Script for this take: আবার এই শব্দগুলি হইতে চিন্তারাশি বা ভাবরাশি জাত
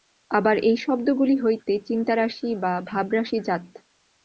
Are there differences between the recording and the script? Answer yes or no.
no